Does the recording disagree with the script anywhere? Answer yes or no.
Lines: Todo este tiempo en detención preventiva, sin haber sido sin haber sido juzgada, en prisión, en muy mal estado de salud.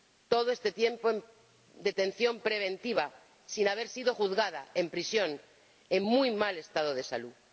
yes